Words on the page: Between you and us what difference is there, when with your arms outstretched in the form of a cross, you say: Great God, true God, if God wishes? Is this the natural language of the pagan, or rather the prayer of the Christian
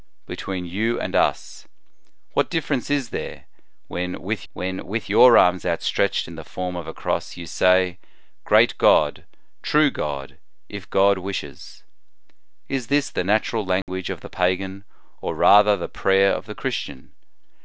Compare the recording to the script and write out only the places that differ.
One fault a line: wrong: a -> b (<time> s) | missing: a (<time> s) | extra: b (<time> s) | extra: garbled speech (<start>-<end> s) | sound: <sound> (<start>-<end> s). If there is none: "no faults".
extra: when with (4.5 s)
sound: dropout (13.8-13.9 s)